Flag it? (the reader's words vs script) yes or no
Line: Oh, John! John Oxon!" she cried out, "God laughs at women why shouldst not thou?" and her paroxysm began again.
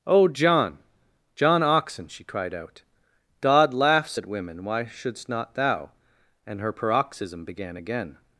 no